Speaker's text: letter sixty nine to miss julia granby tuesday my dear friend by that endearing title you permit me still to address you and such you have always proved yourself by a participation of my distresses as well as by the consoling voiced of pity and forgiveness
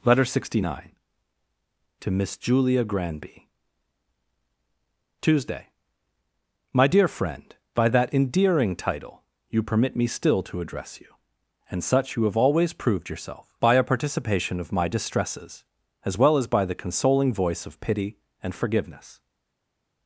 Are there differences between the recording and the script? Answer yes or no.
yes